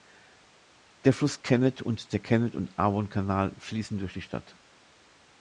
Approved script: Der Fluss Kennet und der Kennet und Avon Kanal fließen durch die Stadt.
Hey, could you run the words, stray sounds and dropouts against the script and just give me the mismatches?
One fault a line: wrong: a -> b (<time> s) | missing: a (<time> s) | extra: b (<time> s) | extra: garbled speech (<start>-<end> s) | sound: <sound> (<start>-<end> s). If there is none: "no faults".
no faults